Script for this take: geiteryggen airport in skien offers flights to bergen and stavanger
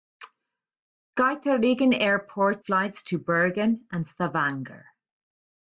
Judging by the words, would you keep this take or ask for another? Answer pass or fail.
fail